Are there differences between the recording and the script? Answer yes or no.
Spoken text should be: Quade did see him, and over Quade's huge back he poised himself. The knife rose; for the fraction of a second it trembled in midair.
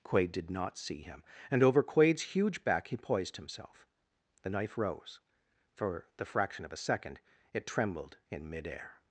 yes